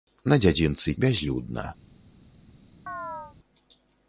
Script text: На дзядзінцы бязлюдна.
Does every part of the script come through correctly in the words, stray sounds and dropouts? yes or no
no